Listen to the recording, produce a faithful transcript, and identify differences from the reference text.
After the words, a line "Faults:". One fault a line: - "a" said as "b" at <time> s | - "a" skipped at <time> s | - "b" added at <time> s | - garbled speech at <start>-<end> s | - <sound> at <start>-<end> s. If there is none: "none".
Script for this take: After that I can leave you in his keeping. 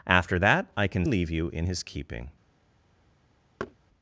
After that I can leave you in his keeping.
Faults:
- thud at 3.6-3.8 s